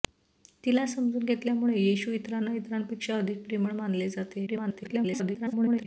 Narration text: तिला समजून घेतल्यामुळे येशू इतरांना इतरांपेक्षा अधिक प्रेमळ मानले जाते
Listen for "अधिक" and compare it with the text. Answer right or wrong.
right